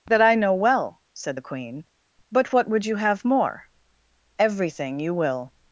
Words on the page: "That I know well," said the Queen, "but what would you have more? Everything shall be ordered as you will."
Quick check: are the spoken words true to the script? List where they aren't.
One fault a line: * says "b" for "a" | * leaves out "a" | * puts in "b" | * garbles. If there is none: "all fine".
* leaves out "shall be ordered as"